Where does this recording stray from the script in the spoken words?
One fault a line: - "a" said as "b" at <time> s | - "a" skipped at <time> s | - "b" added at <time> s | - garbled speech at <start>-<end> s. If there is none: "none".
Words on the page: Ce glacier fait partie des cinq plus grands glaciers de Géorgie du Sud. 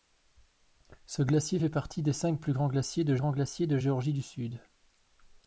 - "grands glaciers de" added at 3.2 s